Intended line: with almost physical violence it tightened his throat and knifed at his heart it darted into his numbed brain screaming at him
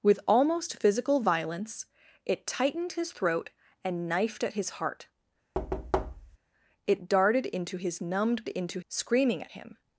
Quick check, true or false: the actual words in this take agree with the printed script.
false